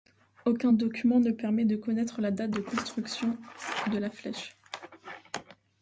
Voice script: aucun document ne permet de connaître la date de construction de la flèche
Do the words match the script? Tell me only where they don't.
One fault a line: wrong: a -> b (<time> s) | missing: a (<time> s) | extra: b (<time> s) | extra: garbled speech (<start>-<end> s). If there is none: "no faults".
no faults